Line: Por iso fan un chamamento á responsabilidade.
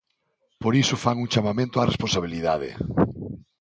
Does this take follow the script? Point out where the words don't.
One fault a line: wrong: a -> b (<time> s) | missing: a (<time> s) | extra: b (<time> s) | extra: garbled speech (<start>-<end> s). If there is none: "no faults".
no faults